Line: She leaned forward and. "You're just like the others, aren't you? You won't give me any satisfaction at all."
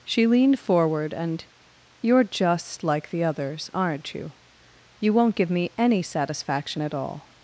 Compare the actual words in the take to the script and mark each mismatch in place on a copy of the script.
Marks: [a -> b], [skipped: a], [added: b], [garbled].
She leaned forward and. "You're just like the others, aren't you? You won't give me any satisfaction at all."